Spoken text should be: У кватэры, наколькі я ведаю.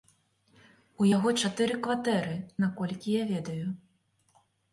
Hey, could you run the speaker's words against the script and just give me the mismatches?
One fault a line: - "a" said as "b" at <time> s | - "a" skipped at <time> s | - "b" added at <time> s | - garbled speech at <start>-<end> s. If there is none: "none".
- "яго чатыры" added at 1.1 s